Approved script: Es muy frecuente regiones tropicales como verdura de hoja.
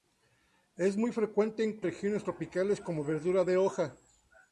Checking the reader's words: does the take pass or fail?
pass